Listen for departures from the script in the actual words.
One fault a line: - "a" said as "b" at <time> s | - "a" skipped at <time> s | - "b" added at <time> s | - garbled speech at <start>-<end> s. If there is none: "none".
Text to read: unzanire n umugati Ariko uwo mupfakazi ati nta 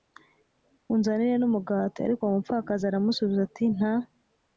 - "aramusubiza" added at 2.8 s